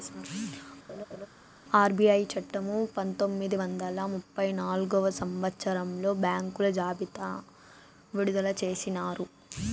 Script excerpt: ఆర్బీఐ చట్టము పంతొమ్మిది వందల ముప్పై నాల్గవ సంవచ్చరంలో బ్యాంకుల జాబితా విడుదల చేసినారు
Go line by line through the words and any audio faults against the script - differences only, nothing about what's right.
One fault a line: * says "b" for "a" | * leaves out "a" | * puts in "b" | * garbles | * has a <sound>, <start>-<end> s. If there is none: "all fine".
* has a laugh, 0.9-1.3 s